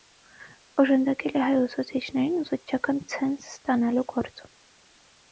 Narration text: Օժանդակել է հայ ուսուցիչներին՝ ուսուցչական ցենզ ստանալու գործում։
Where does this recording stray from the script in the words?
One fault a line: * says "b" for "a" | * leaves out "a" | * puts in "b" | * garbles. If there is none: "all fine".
all fine